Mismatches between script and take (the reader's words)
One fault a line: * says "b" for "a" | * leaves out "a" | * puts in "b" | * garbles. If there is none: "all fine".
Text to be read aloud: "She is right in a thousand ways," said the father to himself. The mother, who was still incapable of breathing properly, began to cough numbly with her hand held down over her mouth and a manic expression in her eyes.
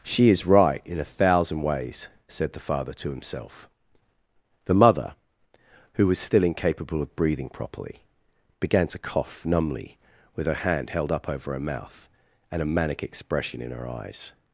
* says "up" for "down"